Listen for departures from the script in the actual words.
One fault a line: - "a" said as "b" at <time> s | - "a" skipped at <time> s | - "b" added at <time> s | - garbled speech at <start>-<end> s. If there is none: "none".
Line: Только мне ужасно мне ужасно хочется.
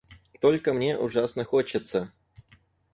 - "мне ужасно" skipped at 1.4 s